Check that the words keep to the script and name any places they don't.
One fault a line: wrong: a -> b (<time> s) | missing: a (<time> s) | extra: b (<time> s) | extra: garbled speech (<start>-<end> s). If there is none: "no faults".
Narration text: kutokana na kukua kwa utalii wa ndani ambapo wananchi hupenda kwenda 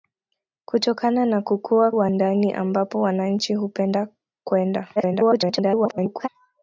missing: kwa utalii (1.9 s)
extra: garbled speech (5.0-6.3 s)